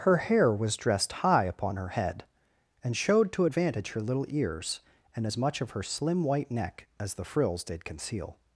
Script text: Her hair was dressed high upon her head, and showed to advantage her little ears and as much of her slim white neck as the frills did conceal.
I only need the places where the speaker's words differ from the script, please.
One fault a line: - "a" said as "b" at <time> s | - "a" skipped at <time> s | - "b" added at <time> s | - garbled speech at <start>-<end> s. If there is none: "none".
none